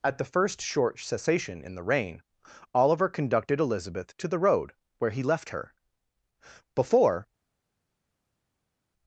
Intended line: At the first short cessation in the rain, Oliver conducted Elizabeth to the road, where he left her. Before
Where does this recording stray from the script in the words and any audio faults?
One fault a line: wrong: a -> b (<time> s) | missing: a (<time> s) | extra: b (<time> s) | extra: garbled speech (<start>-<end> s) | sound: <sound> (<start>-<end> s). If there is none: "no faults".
no faults